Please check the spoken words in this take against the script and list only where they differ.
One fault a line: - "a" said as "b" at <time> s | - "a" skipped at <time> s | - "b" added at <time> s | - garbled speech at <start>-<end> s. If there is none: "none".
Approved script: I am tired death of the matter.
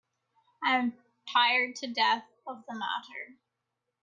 - "to" added at 1.8 s